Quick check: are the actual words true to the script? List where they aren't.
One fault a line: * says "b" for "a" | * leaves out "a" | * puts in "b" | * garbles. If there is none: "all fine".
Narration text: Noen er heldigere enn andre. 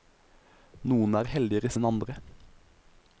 all fine